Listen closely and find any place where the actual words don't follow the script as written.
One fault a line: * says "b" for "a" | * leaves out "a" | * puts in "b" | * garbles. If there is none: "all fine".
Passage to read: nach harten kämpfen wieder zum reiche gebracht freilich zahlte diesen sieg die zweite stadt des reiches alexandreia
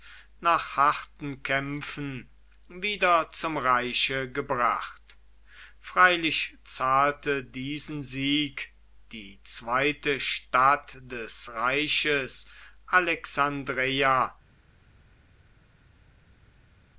all fine